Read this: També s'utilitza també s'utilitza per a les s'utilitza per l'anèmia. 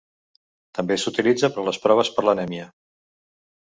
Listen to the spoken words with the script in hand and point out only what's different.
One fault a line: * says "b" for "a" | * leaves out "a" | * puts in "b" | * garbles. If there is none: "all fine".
* leaves out "també s'utilitza"
* says "proves" for "s'utilitza"